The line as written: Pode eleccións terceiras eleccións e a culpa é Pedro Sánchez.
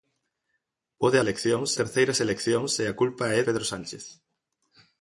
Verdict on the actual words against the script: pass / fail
pass